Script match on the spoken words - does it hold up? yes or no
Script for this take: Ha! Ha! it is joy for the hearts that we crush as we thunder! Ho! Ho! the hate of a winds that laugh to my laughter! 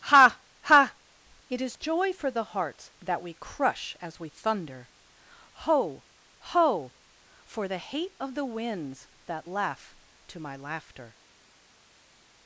no